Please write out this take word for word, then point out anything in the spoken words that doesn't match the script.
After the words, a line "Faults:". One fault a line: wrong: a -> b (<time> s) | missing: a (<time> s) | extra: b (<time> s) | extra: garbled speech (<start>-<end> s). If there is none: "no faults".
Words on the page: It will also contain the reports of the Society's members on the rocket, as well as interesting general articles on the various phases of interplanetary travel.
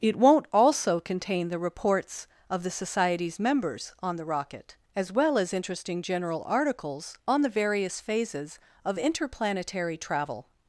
It won't also contain the reports of the Society's members on the rocket, as well as interesting general articles on the various phases of interplanetary travel.
Faults:
wrong: will -> won't (0.1 s)